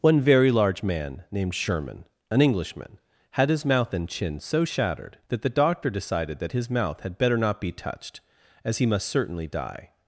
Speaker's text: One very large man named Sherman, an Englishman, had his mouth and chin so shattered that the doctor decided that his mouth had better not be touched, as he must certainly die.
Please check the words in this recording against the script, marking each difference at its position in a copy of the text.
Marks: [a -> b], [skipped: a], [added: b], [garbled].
One very large man named Sherman, an Englishman, had his mouth and chin so shattered that the doctor decided that his mouth had better not be touched, as he must certainly die.